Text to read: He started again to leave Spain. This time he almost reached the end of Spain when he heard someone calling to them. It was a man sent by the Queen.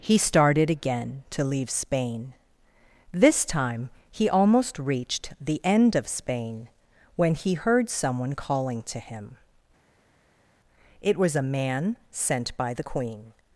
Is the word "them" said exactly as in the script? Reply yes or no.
no